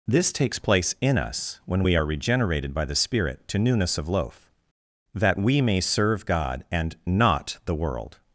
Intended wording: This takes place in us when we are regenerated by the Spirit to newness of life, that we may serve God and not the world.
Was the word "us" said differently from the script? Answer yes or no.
no